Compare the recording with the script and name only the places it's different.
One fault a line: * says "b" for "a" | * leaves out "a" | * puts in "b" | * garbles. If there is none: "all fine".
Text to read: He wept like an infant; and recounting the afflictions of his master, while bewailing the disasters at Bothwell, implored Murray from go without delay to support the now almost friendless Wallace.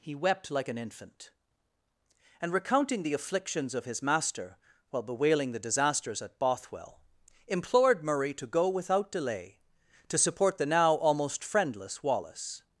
* says "to" for "from"